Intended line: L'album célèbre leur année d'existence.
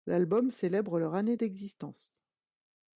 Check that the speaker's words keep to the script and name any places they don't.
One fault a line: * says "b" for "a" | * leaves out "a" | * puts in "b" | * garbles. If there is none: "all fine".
all fine